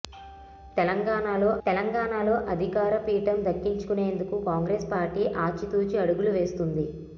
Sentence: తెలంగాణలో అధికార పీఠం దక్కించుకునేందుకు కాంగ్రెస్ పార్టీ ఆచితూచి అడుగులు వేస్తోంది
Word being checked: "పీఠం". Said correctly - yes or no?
yes